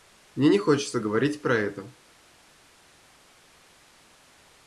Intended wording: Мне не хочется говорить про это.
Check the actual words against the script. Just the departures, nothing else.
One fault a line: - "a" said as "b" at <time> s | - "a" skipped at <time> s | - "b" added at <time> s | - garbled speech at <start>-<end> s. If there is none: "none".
none